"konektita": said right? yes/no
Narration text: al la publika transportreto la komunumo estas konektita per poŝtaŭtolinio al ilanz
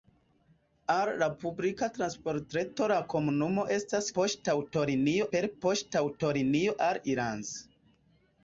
no